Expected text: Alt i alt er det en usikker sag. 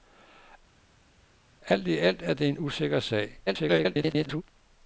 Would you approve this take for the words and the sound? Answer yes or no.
no